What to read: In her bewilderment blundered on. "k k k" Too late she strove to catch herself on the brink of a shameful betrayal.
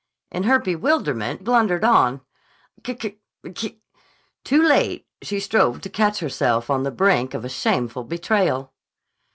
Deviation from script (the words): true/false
false